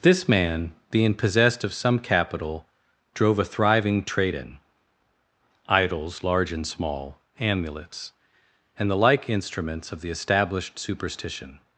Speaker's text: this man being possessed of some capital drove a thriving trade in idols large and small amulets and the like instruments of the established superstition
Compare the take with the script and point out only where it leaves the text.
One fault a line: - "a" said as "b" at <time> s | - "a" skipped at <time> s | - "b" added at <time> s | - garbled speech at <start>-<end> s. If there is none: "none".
none